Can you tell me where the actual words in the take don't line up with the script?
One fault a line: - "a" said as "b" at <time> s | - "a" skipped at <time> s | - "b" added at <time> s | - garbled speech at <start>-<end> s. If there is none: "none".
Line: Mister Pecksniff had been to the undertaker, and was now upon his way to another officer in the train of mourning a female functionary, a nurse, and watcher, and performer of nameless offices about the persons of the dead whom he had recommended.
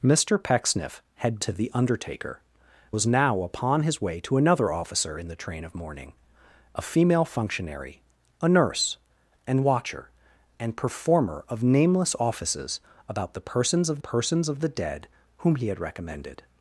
- "been" skipped at 1.4 s
- "and" skipped at 2.4 s
- "persons of" added at 14.0 s